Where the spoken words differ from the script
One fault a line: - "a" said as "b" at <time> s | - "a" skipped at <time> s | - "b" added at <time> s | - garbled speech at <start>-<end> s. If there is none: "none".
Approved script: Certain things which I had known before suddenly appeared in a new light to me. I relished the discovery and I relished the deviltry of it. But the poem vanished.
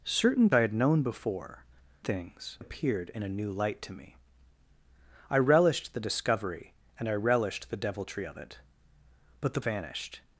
- "things which" skipped at 0.5 s
- "suddenly" said as "things" at 2.0 s
- "poem" skipped at 9.6 s